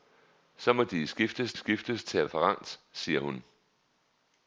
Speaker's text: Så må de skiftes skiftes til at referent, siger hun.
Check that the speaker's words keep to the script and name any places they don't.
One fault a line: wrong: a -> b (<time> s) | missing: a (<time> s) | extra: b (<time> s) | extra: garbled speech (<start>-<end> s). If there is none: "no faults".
no faults